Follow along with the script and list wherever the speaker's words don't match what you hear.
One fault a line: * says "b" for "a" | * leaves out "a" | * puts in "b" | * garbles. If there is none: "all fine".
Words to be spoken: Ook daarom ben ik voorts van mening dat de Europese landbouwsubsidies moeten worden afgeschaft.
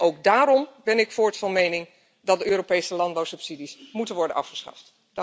all fine